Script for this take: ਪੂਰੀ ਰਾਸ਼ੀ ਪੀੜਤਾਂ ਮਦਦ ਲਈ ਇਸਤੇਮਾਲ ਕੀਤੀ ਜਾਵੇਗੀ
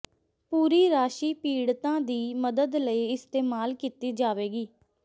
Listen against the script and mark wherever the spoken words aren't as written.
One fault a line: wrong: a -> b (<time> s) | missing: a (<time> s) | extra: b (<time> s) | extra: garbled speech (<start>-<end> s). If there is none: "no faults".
extra: ਦੀ (2.0 s)